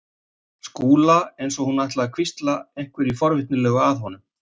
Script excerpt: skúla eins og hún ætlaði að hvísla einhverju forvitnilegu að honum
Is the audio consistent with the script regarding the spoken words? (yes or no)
yes